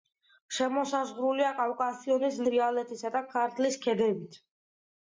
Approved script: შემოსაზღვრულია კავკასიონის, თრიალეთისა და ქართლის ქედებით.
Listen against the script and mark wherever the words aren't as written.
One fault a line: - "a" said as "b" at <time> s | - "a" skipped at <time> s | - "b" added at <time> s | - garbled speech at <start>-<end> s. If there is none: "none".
none